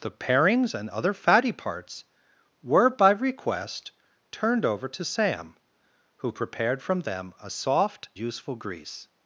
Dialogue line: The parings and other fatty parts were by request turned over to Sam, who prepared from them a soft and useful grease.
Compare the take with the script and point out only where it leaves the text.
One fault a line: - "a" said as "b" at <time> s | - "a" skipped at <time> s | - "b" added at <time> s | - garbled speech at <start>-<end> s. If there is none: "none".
- "and" skipped at 8.1 s